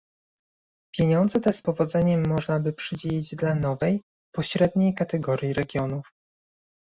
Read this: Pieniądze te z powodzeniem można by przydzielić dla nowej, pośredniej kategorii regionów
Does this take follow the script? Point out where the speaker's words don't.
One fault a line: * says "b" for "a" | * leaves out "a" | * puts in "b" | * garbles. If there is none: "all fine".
all fine